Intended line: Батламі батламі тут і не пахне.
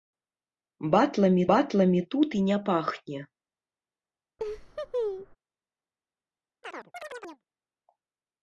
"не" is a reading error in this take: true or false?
false